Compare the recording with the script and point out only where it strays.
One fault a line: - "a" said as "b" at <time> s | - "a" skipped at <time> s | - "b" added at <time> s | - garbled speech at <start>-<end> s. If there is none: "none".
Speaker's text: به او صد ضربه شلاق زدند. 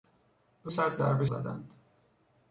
- "او" skipped at 0.7 s
- "شلاق" skipped at 1.3 s